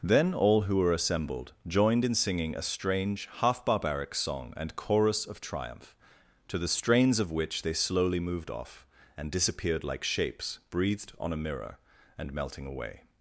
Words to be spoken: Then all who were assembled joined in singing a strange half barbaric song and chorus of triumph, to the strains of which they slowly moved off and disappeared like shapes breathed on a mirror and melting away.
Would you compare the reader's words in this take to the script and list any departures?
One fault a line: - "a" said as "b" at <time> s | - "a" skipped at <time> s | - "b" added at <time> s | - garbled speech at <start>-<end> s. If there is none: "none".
none